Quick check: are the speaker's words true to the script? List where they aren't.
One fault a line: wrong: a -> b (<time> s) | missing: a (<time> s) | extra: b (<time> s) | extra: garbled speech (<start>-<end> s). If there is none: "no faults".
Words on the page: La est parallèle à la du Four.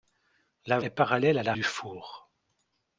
no faults